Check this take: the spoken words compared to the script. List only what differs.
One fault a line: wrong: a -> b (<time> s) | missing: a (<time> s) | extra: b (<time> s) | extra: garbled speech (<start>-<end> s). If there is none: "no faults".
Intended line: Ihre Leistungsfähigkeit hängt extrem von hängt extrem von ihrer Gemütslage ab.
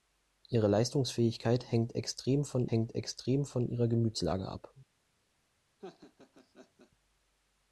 no faults